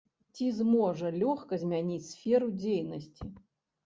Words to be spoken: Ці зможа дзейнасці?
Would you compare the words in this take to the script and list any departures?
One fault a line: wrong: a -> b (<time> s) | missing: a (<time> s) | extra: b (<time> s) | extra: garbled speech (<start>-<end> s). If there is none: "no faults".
extra: лёгка змяніць сферу (1.2 s)